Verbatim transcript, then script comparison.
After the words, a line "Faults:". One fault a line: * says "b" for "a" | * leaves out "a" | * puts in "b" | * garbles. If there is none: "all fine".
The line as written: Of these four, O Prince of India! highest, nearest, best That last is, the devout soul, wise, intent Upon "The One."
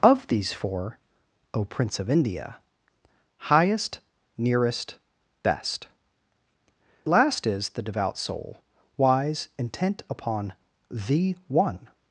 Of these four, O Prince of India! highest, nearest, best Last is, the devout soul, wise, intent Upon "The One."
Faults:
* leaves out "That"